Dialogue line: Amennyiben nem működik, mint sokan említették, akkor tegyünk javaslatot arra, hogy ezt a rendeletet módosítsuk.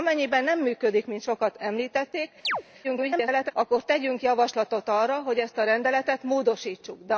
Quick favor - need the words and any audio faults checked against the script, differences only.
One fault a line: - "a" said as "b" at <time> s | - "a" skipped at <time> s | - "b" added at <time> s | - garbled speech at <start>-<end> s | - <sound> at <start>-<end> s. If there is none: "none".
- chirp at 2.4-2.6 s
- garbled speech at 2.8-3.5 s